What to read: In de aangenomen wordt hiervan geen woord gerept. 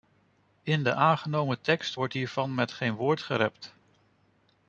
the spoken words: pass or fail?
fail